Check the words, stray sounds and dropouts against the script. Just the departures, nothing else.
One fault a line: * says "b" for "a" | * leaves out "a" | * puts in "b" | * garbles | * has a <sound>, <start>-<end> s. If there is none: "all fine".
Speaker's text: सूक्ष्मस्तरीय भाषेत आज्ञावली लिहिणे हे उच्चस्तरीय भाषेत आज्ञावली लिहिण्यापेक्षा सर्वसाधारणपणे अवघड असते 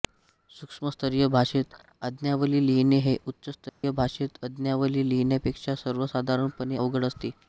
* has a dropout, 3.7-3.8 s